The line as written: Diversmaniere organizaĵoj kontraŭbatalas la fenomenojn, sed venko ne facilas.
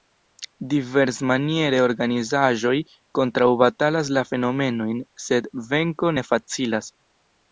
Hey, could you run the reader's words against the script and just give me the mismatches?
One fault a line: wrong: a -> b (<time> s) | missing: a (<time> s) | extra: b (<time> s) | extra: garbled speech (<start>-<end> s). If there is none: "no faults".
no faults